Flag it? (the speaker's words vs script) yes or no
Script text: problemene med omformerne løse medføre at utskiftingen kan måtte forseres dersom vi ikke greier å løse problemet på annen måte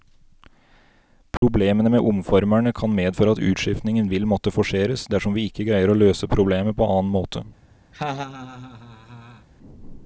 yes